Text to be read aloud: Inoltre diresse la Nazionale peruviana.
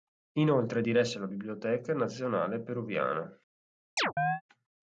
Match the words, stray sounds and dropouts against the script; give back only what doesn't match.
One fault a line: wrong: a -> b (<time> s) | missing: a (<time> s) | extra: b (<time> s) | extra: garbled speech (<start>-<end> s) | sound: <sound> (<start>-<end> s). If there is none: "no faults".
extra: Biblioteca (1.3 s)
sound: chirp (4.0-4.4 s)